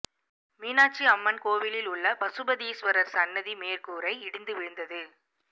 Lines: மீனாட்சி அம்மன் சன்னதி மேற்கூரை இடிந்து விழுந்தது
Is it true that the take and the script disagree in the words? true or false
true